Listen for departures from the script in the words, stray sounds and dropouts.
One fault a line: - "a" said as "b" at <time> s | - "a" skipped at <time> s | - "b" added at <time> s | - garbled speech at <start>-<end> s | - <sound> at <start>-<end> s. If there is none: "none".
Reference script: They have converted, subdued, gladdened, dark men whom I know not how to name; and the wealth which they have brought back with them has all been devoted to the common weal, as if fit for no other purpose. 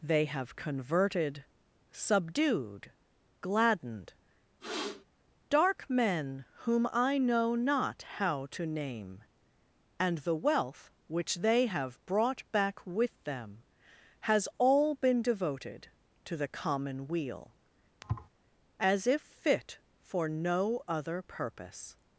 - sniff at 4.6-5.0 s
- thud at 18.0-18.3 s